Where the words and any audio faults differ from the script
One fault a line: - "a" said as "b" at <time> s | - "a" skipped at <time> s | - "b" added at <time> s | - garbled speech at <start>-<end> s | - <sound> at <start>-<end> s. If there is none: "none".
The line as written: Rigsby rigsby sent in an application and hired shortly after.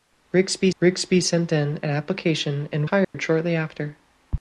- dropout at 3.0-3.1 s